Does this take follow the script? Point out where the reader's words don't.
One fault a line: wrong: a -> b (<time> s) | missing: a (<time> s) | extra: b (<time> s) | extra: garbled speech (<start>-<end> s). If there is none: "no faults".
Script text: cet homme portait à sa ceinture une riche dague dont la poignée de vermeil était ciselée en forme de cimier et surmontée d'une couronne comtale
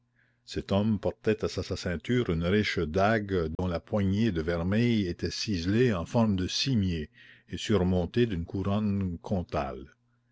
extra: sa (1.6 s)